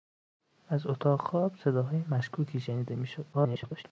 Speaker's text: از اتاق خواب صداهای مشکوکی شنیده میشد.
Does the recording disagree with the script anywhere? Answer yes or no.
yes